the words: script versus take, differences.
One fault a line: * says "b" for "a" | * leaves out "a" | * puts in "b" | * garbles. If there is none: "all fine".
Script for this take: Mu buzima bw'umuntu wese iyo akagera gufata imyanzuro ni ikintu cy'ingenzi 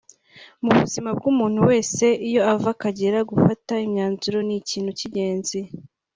* puts in "ava"